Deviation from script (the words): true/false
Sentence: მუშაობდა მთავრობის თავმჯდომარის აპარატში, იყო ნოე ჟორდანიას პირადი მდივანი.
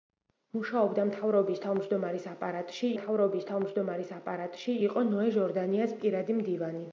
true